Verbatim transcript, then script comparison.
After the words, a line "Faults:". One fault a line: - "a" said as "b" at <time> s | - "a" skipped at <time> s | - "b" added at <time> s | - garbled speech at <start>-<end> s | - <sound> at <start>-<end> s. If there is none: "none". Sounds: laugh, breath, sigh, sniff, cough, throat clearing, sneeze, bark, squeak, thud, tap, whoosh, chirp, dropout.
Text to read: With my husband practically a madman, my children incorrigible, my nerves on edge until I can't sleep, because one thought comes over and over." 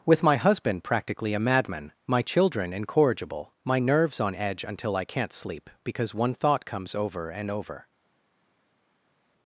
With my husband practically a madman, my children incorrigible, my nerves on edge until I can't sleep, because one thought comes over and over."
Faults:
none